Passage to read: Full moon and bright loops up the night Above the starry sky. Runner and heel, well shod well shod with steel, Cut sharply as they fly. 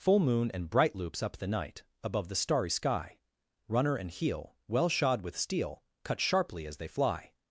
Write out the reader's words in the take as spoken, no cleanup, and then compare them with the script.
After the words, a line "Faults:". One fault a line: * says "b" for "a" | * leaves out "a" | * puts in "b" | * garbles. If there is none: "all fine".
Full moon and bright loops up the night Above the starry sky. Runner and heel, well shod with steel, Cut sharply as they fly.
Faults:
* leaves out "well shod"